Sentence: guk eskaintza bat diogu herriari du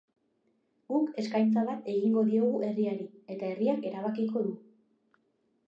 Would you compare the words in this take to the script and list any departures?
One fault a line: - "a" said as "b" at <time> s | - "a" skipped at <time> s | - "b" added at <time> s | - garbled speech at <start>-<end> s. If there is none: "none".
- "egingo" added at 1.9 s
- "eta herriak erabakiko" added at 3.4 s